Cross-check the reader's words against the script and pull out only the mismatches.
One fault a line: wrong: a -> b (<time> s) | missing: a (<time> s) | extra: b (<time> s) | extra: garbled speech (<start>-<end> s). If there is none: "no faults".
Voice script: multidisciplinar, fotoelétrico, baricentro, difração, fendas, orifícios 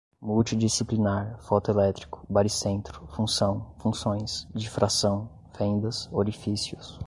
extra: função funções (3.1 s)